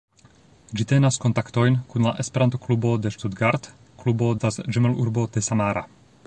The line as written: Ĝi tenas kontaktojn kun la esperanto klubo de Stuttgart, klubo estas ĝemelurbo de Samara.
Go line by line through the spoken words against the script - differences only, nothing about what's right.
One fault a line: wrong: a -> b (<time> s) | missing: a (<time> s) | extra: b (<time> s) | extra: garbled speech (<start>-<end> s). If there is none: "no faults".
no faults